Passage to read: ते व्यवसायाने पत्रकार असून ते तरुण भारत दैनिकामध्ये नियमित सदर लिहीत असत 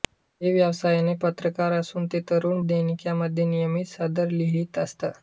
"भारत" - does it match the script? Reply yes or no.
no